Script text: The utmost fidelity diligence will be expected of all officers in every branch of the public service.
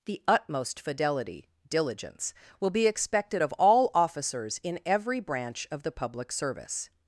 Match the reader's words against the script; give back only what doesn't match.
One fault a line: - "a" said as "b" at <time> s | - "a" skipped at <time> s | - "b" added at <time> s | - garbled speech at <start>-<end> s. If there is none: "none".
none